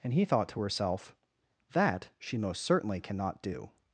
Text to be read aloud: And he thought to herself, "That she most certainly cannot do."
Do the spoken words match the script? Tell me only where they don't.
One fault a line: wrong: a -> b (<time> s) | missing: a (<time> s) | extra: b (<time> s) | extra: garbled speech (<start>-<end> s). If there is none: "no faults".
no faults